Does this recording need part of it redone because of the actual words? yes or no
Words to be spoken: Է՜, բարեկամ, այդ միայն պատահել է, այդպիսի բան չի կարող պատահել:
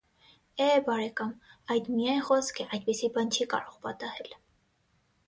yes